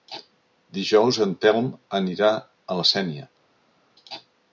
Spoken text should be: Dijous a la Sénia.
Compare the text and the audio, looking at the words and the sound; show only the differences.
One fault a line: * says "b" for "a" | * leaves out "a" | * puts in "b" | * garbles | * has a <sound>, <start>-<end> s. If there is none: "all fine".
* puts in "en Telm anirà"